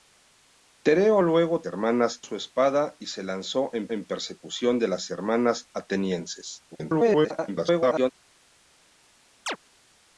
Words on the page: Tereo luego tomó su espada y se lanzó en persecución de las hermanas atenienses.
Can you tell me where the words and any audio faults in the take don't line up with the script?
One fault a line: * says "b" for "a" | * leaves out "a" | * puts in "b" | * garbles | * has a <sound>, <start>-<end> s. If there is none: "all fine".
* says "hermanas" for "tomó"
* puts in "en"
* garbles
* has a chirp, 9.5-9.6 s